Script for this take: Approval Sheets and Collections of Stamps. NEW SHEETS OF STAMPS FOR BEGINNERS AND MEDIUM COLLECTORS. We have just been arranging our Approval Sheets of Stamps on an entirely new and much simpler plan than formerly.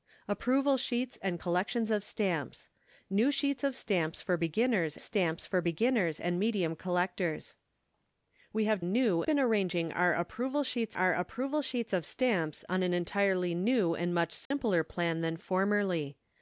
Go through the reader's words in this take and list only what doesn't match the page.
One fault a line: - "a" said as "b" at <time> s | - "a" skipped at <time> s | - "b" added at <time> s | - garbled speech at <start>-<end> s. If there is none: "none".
- "STAMPS FOR BEGINNERS" added at 5.0 s
- "just" said as "new" at 8.8 s
- "our Approval Sheets" added at 10.9 s